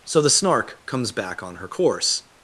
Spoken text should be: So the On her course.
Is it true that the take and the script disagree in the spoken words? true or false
true